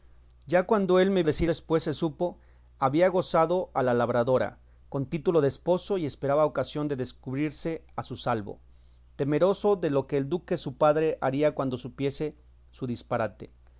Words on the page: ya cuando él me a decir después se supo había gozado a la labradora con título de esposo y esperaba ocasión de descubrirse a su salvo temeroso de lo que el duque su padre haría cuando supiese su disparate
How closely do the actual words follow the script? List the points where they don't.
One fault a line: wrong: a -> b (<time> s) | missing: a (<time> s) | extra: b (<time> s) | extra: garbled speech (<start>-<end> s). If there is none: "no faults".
no faults